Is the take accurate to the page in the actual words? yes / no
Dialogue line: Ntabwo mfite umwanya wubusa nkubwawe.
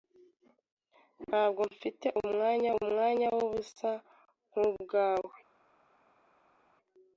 no